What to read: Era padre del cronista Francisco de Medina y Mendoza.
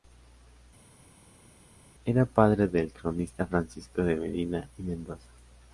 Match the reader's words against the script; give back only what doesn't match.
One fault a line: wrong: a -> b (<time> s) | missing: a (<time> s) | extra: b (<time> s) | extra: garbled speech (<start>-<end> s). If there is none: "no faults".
no faults